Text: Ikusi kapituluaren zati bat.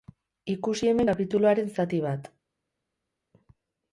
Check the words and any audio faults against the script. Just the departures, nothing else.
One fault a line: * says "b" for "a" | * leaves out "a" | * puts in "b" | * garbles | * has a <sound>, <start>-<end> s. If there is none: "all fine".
* puts in "hemen"